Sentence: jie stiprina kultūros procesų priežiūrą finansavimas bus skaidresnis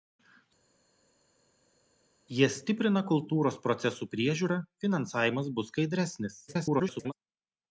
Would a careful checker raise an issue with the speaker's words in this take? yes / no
yes